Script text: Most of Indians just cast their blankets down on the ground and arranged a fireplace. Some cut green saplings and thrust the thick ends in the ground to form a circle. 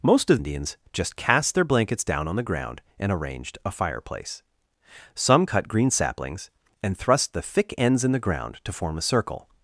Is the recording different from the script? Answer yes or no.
no